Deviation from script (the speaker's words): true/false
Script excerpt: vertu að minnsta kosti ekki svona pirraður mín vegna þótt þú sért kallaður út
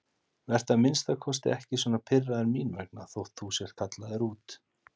false